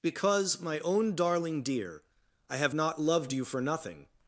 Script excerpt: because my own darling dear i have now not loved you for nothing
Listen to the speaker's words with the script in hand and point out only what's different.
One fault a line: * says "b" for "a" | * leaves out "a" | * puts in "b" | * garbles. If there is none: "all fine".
* leaves out "now"